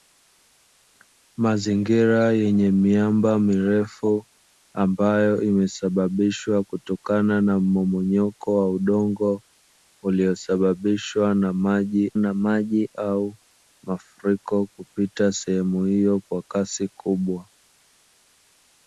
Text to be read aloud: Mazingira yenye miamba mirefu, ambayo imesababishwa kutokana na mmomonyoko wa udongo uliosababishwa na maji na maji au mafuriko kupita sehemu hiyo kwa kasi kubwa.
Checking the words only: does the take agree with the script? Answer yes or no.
yes